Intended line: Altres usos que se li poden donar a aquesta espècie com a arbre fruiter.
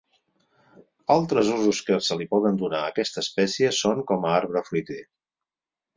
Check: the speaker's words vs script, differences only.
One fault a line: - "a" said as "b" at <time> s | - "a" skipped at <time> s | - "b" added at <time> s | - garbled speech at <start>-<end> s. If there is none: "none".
- "són" added at 3.8 s